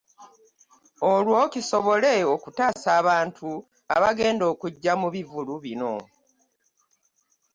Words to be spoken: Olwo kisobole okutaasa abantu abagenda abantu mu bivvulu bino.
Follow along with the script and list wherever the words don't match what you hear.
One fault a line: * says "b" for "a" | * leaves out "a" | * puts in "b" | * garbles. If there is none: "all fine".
* says "okujja" for "abantu"